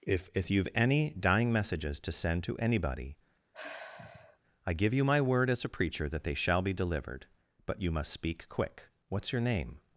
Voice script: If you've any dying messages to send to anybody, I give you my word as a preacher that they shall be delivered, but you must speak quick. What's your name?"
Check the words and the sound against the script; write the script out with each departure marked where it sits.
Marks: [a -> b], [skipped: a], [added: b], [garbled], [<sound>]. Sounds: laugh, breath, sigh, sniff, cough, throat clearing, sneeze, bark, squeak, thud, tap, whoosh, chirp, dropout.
If [added: if] you've any dying messages to send to anybody, [sigh] I give you my word as a preacher that they shall be delivered, but you must speak quick. What's your name?"